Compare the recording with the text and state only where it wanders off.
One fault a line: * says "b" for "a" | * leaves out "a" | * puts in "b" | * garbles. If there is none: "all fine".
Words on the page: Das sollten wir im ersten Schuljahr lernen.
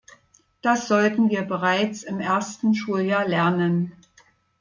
* puts in "bereits"